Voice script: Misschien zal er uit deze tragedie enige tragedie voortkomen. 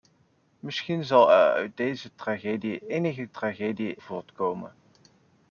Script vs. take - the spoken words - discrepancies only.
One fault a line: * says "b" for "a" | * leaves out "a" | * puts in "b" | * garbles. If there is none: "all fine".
all fine